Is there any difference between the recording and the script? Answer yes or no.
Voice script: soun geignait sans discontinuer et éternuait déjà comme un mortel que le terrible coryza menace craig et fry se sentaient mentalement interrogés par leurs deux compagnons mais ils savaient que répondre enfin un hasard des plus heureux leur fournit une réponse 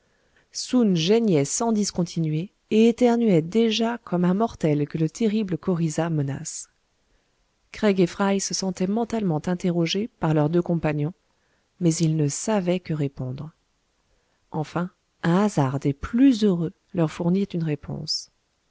yes